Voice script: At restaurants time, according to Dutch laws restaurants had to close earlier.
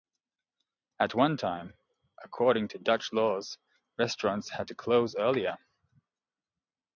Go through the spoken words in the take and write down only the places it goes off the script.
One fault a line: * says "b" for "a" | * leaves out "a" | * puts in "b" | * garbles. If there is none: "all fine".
* says "one" for "restaurants"